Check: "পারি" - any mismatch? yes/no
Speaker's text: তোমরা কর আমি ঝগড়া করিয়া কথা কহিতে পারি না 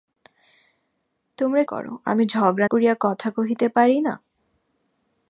no